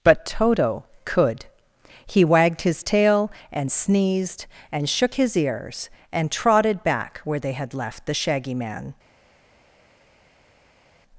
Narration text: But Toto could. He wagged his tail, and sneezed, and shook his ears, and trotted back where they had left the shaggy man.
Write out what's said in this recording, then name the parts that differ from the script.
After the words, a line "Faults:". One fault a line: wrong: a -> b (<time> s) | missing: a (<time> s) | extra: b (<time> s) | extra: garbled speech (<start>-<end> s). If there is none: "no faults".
But Toto could. He wagged his tail, and sneezed, and shook his ears, and trotted back where they had left the shaggy man.
Faults:
no faults